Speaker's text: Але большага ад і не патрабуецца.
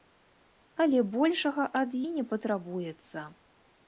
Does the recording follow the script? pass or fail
pass